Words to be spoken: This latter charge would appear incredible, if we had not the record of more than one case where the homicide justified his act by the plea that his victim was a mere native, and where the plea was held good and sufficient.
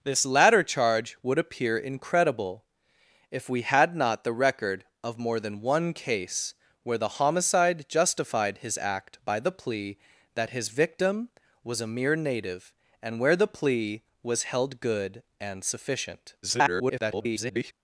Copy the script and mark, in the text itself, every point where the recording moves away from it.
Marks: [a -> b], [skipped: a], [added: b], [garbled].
This latter charge would appear incredible, if we had not the record of more than one case where the homicide justified his act by the plea that his victim was a mere native, and where the plea was held good and sufficient. [garbled]